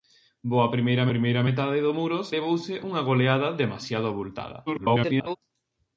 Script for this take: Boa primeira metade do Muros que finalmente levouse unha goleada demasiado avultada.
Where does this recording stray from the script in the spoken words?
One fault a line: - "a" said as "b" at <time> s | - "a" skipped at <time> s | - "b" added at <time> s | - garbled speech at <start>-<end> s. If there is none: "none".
- "primeira" added at 1.1 s
- "que finalmente" skipped at 2.3 s
- garbled speech at 4.7-5.4 s